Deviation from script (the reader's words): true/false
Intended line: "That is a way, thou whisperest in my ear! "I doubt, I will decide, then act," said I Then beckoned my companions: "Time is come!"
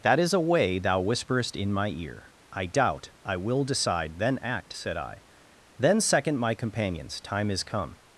true